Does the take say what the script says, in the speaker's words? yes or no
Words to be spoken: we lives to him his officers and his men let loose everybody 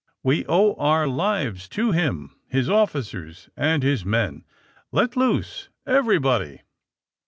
no